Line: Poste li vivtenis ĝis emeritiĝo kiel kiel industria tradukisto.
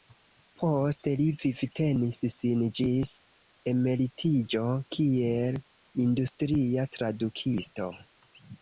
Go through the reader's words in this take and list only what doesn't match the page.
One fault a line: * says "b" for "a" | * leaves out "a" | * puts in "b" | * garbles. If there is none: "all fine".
* puts in "sin"
* leaves out "kiel"